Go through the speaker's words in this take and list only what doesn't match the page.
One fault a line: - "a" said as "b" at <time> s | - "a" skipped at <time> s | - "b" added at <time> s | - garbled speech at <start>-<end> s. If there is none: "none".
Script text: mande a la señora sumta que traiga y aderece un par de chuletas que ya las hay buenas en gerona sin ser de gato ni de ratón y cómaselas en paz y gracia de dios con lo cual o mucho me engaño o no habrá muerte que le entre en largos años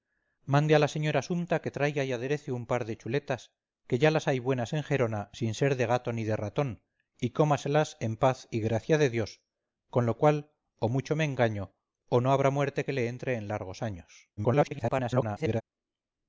- garbled speech at 14.4-15.6 s